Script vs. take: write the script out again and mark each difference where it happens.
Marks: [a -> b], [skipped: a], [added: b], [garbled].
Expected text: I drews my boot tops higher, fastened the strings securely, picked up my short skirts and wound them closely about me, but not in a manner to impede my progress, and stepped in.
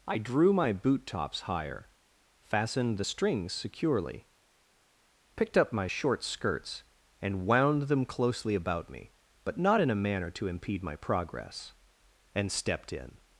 I [drews -> drew] my boot tops higher, fastened the strings securely, picked up my short skirts and wound them closely about me, but not in a manner to impede my progress, and stepped in.